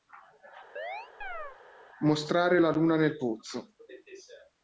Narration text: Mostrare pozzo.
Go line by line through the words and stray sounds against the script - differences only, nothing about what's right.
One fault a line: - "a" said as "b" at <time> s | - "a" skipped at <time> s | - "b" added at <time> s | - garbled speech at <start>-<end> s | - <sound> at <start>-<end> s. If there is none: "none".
- chirp at 0.8-1.6 s
- "la luna nel" added at 2.6 s